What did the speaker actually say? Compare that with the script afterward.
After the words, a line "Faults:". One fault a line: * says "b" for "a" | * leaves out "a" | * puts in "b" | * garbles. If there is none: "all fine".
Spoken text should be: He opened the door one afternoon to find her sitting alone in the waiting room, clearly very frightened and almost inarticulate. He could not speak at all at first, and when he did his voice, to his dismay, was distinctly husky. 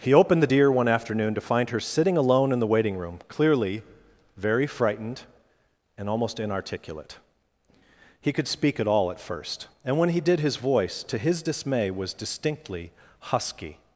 He opened the deer one afternoon to find her sitting alone in the waiting room, clearly very frightened and almost inarticulate. He could speak at all at first, and when he did his voice, to his dismay, was distinctly husky.
Faults:
* says "deer" for "door"
* leaves out "not"